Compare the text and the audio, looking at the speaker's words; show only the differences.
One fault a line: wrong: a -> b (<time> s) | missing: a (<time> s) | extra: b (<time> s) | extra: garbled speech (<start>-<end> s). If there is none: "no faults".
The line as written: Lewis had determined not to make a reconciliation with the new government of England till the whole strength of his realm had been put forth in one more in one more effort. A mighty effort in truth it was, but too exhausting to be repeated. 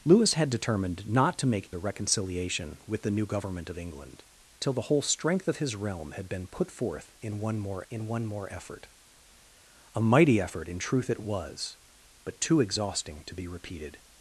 no faults